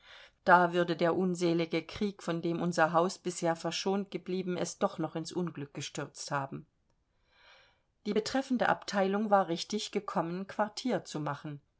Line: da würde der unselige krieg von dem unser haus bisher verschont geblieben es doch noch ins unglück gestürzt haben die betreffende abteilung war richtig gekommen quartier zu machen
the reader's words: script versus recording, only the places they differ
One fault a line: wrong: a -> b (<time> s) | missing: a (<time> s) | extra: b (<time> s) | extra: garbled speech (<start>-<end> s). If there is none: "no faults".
no faults